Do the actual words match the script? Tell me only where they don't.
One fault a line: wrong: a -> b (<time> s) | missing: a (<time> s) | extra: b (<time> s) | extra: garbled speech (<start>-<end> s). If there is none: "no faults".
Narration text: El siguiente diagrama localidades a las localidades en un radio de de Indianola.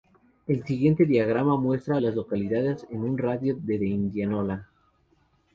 wrong: localidades -> muestra (1.6 s)